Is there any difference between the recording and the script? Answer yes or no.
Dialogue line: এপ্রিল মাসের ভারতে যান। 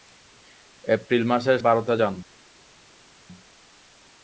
no